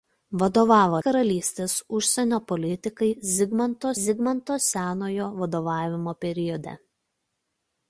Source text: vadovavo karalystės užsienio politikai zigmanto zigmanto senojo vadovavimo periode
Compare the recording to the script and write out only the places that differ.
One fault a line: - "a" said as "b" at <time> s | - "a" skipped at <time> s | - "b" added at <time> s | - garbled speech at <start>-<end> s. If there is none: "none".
none